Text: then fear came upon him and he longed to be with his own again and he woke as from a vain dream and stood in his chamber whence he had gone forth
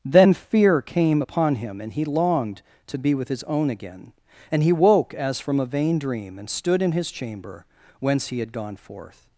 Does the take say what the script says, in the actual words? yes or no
yes